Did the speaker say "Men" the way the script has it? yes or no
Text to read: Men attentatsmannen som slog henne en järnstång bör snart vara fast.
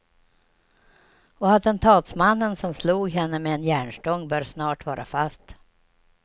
no